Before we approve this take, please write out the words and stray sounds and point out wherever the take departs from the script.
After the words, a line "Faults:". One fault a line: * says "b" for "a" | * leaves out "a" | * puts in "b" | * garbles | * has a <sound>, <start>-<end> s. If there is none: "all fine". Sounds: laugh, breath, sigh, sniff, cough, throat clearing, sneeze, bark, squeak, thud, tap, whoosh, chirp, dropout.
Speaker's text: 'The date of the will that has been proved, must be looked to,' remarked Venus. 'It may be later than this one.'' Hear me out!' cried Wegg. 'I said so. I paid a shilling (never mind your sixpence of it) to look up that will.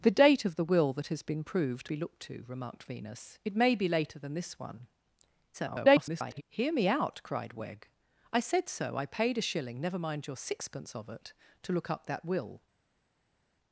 'The date of the will that has been proved, be looked to,' remarked Venus. 'It may be later than this one.'' [garbled] Hear me out!' cried Wegg. 'I said so. I paid a shilling (never mind your sixpence of it) to look up that will.
Faults:
* leaves out "must"
* garbles